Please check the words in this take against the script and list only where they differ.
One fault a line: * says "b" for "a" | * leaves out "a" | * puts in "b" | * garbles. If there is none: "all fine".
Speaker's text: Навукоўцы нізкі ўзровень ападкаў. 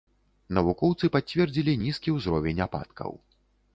* puts in "пацвердзілі"